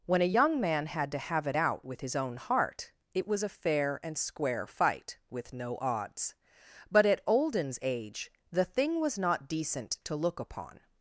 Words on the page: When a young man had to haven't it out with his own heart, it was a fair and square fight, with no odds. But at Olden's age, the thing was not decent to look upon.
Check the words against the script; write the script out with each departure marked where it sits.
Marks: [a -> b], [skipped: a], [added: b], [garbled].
When a young man had to [haven't -> have] it out with his own heart, it was a fair and square fight, with no odds. But at Olden's age, the thing was not decent to look upon.